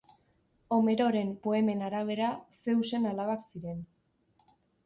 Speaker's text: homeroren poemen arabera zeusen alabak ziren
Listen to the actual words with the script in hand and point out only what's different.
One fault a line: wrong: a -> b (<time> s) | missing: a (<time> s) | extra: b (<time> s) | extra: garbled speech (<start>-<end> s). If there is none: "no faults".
no faults